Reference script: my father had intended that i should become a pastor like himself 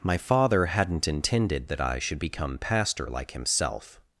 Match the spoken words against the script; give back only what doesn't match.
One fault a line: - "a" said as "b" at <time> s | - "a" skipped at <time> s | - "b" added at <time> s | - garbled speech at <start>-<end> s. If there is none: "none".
- "had" said as "hadn't" at 0.7 s
- "a" skipped at 2.6 s